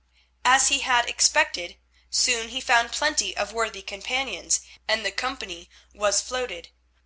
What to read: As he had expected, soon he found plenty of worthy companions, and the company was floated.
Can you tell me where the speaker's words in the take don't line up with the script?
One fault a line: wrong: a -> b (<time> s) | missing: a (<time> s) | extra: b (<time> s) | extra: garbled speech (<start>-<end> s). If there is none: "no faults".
no faults